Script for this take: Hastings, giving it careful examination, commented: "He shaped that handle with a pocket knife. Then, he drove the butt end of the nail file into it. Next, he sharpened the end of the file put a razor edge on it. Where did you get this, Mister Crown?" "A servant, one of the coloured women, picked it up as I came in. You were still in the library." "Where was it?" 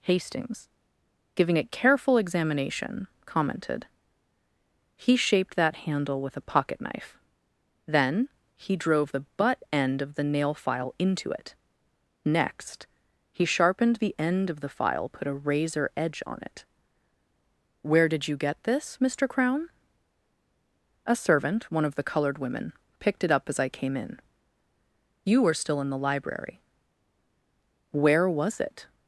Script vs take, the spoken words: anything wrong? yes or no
no